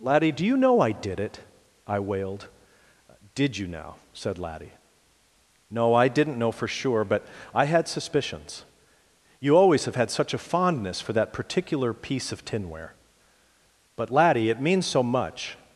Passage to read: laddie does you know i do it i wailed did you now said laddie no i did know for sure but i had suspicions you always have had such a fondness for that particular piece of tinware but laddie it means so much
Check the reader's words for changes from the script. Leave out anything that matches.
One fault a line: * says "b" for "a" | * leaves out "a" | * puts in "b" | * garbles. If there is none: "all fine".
* says "do" for "does"
* says "did" for "do"
* says "didn't" for "did"